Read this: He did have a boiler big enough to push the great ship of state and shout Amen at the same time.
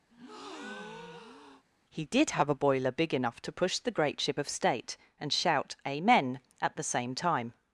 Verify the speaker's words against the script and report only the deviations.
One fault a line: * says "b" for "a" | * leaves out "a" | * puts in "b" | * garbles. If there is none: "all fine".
all fine